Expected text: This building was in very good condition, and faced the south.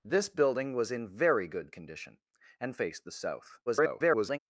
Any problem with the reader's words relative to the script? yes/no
yes